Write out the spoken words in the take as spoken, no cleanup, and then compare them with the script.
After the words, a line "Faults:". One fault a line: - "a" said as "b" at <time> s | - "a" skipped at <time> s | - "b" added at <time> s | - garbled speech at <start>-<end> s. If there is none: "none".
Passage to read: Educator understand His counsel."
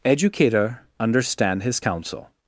Educator understand His counsel."
Faults:
none